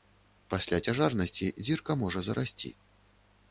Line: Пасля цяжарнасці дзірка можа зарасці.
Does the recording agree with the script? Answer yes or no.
yes